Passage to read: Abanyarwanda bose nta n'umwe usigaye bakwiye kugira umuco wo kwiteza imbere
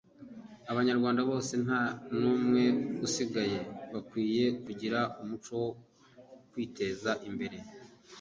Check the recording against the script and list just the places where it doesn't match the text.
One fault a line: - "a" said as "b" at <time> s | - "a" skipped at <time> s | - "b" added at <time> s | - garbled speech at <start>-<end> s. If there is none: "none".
none